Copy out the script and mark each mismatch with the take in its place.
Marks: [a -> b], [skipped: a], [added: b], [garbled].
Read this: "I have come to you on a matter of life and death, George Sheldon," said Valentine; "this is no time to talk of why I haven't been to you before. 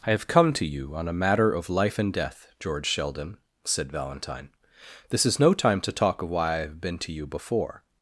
"I have come to you on a matter of life and death, George Sheldon," said Valentine; "this is no time to talk of why I [haven't -> have] been to you before.